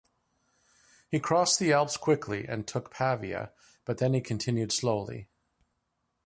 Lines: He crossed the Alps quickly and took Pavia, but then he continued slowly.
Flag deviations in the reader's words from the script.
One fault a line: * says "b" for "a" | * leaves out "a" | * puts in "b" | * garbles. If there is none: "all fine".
all fine